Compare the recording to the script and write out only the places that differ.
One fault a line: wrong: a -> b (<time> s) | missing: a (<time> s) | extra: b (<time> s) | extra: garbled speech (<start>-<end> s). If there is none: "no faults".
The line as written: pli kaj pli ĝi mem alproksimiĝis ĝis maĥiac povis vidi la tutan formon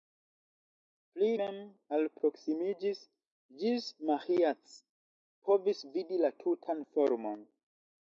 missing: kaj pli ĝi (1.3 s)